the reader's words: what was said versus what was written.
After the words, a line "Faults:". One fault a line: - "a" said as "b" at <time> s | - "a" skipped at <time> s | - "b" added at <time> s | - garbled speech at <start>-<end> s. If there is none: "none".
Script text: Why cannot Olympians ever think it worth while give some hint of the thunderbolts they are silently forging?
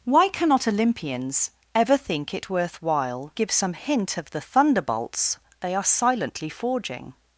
Why cannot Olympians ever think it worth while give some hint of the thunderbolts they are silently forging?
Faults:
none